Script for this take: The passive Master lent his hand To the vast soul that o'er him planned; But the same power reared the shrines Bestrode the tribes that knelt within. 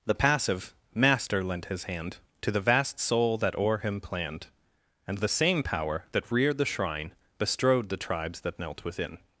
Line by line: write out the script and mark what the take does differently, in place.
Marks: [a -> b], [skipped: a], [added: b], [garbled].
The passive Master lent his hand To the vast soul that o'er him planned; [But -> And] the same power [added: that] reared the [shrines -> shrine] Bestrode the tribes that knelt within.